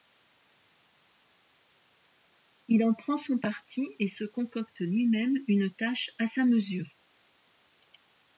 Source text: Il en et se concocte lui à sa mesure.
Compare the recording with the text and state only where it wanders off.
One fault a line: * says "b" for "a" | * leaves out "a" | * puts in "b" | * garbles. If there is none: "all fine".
* puts in "prend son parti"
* puts in "même une tâche"